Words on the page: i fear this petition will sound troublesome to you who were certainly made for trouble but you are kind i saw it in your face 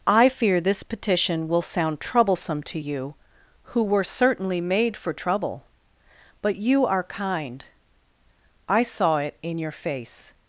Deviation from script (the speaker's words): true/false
false